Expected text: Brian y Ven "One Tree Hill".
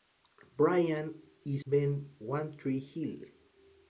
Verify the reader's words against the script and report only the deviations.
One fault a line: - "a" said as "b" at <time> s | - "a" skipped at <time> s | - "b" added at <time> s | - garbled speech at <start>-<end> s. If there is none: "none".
none